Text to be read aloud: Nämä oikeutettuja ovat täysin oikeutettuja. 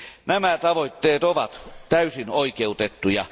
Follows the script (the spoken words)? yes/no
no